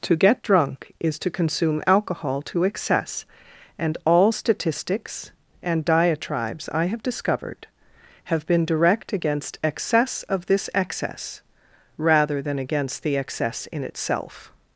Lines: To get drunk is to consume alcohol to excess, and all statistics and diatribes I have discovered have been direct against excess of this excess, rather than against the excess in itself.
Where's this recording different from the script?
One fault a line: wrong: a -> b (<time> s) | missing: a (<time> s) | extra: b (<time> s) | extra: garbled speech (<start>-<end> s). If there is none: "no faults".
no faults